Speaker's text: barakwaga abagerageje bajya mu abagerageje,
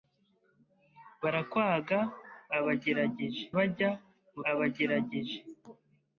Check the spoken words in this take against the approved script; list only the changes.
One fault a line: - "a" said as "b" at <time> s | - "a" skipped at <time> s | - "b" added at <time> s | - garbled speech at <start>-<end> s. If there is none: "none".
none